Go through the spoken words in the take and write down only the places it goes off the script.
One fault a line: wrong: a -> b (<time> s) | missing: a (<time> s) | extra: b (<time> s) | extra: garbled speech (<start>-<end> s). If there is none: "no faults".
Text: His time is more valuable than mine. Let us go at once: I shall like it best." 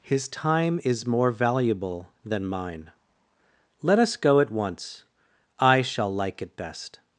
no faults